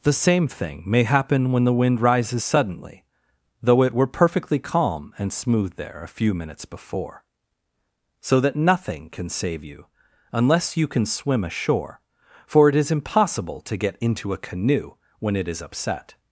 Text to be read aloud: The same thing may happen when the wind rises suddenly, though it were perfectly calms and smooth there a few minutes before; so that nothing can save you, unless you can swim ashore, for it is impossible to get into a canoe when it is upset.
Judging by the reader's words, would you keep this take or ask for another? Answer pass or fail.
fail